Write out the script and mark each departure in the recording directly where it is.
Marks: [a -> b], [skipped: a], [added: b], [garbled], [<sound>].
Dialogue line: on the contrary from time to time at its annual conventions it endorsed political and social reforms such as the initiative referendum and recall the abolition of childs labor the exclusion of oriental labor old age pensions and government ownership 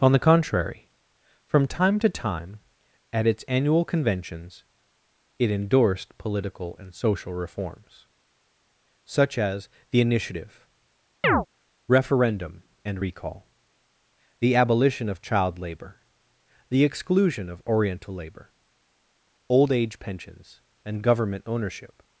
on the contrary from time to time at its annual conventions it endorsed political and social reforms such as the initiative [chirp] referendum and recall the abolition of [childs -> child] labor the exclusion of oriental labor old age pensions and government ownership